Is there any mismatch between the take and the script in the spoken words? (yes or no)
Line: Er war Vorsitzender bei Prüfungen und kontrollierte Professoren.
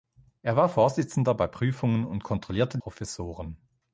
no